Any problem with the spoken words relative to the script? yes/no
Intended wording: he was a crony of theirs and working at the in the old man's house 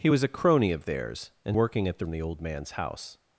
no